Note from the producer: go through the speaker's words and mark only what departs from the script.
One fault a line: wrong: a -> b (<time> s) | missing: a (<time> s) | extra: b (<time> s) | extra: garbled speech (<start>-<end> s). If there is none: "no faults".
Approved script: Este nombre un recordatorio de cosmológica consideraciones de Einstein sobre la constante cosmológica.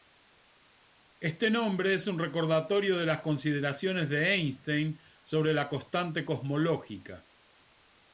extra: es (1.9 s)
wrong: cosmológica -> las (3.0 s)